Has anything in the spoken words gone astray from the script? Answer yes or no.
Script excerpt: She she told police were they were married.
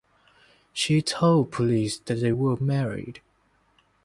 yes